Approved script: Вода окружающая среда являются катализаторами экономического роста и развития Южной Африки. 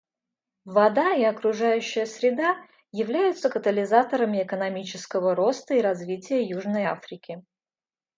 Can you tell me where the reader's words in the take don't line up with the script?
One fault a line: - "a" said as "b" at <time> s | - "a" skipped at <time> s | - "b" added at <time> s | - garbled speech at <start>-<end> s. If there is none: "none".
- "и" added at 1.1 s